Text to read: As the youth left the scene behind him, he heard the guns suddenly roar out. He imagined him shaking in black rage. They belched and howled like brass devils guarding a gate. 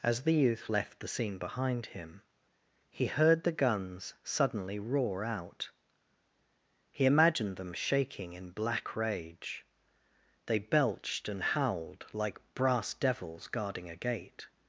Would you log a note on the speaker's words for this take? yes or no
yes